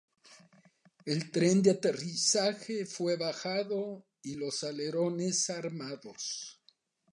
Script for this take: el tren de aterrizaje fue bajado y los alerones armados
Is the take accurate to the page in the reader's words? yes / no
yes